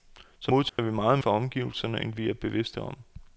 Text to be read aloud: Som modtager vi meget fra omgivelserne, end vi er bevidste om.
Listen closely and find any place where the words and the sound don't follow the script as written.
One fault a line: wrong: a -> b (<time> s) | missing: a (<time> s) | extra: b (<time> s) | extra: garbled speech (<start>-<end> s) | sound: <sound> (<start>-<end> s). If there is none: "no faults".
sound: dropout (0.7-0.8 s)